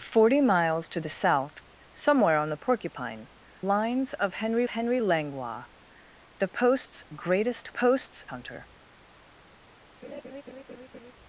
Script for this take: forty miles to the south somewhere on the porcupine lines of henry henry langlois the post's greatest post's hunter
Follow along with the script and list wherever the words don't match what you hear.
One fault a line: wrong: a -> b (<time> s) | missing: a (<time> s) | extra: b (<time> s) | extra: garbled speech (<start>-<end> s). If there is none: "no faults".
no faults